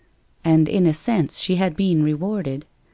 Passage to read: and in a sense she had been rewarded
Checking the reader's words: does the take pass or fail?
pass